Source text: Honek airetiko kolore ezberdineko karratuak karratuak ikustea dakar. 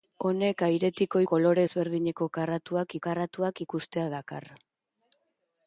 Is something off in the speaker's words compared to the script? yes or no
no